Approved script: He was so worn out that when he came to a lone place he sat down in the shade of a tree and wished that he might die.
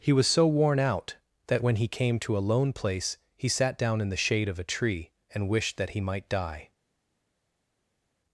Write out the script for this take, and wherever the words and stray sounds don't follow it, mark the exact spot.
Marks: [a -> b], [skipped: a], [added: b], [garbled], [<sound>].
He was so worn out that when he came to a lone place he sat down in the shade of a tree and wished that he might die.